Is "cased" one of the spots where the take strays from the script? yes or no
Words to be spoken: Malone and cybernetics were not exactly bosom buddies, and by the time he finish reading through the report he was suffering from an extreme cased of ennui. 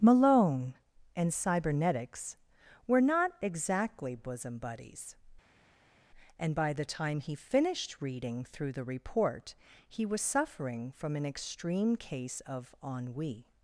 yes